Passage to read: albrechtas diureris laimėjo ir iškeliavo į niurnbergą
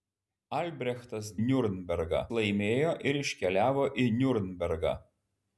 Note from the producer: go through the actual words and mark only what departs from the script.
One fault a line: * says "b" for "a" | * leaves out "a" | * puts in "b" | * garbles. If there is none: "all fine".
* says "niurnbergą" for "diureris"